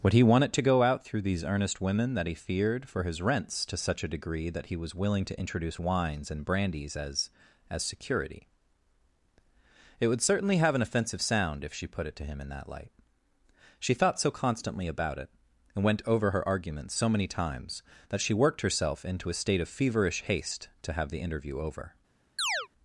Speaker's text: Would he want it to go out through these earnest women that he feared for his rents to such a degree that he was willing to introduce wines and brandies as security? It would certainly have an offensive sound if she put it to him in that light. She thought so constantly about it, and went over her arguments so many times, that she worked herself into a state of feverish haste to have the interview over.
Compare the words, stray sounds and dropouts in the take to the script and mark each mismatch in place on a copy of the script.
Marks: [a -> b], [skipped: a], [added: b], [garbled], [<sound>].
Would he want it to go out through these earnest women that he feared for his rents to such a degree that he was willing to introduce wines and brandies as [added: as] security? It would certainly have an offensive sound if she put it to him in that light. She thought so constantly about it, and went over her arguments so many times, that she worked herself into a state of feverish haste to have the interview over. [chirp]